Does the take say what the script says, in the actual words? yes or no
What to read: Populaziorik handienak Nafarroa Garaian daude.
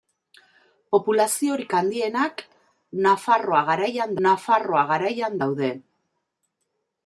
no